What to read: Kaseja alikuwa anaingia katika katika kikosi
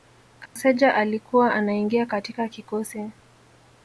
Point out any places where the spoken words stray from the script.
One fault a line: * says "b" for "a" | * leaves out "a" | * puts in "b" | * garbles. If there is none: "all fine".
* leaves out "katika"